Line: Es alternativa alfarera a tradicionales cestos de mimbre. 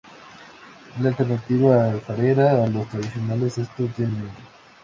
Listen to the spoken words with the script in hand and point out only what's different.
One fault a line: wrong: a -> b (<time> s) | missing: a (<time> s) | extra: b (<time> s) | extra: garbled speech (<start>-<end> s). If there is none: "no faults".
extra: la (1.0 s)
extra: los (2.7 s)